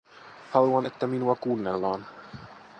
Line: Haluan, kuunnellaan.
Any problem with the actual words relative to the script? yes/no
yes